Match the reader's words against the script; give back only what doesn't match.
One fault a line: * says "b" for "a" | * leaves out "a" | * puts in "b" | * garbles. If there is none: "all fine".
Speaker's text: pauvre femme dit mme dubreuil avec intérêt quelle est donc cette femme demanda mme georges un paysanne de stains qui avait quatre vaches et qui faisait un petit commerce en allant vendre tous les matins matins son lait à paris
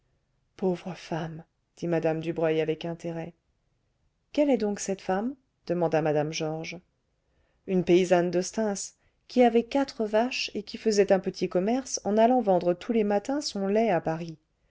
* says "une" for "un"
* leaves out "matins"